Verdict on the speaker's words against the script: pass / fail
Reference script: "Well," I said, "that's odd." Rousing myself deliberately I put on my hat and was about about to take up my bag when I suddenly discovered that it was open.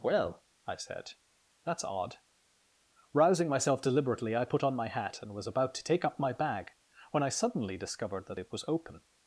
fail